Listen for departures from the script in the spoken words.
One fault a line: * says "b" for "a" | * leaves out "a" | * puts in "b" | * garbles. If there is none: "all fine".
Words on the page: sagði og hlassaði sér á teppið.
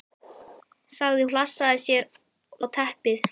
all fine